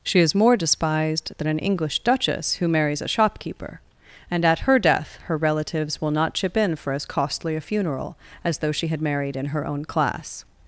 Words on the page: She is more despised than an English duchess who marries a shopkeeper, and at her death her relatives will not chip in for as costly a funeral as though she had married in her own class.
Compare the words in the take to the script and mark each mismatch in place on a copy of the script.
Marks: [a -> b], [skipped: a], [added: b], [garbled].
She is more despised than an English duchess who marries a shopkeeper, and at her death her relatives will not chip in for as costly a funeral as though she had married in her own class.